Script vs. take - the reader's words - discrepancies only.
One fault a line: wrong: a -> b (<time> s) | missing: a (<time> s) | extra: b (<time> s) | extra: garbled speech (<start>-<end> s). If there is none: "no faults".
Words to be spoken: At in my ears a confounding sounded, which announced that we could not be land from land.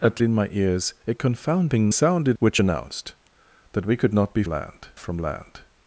no faults